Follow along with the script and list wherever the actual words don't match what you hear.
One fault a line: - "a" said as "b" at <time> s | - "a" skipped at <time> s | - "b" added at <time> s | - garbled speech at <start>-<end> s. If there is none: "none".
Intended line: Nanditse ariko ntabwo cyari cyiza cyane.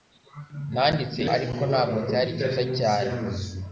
none